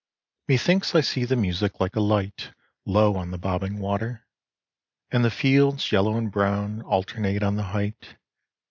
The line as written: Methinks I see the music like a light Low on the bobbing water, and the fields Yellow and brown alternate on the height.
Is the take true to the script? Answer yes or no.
yes